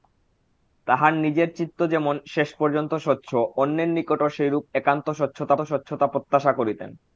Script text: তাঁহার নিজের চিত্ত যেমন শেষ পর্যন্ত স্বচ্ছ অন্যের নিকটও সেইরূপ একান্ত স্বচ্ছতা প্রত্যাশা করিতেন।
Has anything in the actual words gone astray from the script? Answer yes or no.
yes